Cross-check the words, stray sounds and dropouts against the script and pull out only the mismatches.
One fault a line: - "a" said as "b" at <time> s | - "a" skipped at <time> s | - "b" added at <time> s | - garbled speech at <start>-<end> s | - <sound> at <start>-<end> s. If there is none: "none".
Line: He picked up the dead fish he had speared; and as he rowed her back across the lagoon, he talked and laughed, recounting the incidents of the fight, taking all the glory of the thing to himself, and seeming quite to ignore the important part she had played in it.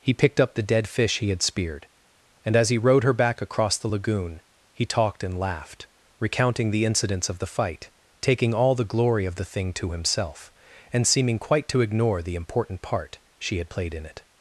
none